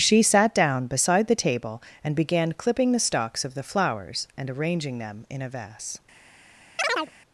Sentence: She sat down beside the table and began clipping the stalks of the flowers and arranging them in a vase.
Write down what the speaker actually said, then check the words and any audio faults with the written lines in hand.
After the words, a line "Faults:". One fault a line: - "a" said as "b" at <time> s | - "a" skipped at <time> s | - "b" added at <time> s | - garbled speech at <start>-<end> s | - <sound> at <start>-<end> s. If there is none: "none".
She sat down beside the table and began clipping the stalks of the flowers and arranging them in a vase.
Faults:
- chirp at 6.8-7.1 s